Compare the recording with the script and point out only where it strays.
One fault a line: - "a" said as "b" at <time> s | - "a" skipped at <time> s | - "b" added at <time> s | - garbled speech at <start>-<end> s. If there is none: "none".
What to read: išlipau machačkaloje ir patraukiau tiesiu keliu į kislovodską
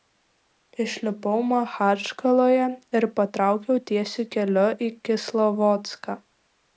none